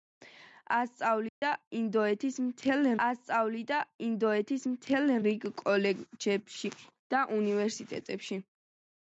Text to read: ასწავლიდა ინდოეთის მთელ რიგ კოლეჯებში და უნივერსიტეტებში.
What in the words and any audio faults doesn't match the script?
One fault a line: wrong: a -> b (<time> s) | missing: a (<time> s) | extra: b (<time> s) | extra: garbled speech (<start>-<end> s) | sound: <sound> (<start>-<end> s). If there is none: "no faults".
sound: dropout (1.3-1.4 s)
extra: ასწავლიდა ინდოეთის მთელ (3.0 s)